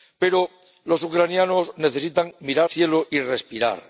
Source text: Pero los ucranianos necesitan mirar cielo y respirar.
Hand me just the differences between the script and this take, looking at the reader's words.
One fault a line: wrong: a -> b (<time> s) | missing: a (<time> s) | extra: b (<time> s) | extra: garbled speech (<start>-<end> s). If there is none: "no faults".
no faults